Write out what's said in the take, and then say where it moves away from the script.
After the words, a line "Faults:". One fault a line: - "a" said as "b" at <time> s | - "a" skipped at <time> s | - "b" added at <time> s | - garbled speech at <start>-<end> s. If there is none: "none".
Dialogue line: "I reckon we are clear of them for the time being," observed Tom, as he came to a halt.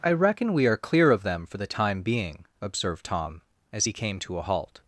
"I reckon we are clear of them for the time being," observed Tom, as he came to a halt.
Faults:
none